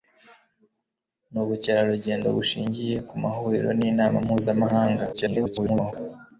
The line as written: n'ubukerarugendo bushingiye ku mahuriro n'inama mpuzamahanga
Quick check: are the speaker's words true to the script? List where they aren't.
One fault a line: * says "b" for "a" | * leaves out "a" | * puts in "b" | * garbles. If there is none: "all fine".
* garbles